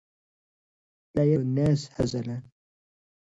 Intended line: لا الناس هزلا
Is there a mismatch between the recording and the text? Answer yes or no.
no